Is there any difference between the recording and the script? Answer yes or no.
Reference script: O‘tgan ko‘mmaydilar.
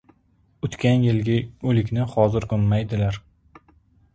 yes